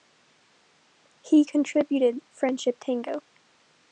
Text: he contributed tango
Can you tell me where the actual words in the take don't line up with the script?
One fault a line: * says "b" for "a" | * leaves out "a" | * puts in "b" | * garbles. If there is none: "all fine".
* puts in "friendship"